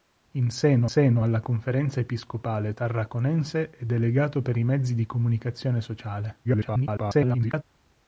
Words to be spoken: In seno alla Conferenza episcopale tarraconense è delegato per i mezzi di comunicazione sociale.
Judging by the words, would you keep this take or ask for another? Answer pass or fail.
fail